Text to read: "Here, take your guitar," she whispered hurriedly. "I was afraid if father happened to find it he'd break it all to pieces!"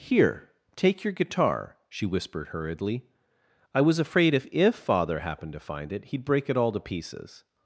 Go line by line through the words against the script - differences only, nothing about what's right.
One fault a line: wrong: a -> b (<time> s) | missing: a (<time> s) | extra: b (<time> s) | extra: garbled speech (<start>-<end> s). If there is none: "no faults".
extra: if (4.5 s)